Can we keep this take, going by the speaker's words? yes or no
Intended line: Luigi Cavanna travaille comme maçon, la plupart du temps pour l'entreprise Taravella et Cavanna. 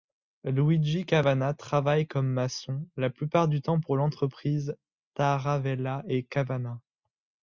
yes